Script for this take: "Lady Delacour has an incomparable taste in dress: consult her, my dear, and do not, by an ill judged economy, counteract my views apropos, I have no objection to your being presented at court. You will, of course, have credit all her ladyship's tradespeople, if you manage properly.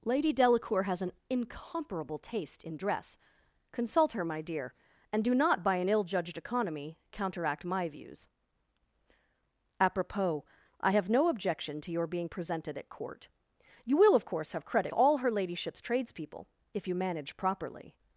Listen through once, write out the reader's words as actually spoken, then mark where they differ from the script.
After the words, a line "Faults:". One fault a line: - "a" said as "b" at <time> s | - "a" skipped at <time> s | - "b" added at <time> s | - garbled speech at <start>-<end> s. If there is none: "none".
"Lady Delacour has an incomparable taste in dress: consult her, my dear, and do not, by an ill judged economy, counteract my views apropos, I have no objection to your being presented at court. You will, of course, have credit all her ladyship's tradespeople, if you manage properly.
Faults:
none